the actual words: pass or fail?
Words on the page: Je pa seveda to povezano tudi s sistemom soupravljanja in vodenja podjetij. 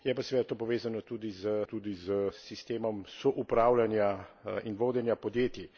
fail